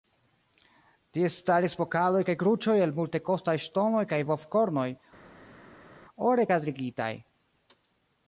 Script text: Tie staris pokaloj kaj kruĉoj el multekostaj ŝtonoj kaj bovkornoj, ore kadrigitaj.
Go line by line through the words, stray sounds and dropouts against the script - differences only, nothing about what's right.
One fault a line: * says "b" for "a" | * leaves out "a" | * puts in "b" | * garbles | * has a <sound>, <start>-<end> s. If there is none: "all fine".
all fine